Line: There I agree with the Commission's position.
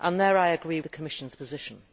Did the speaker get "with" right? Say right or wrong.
wrong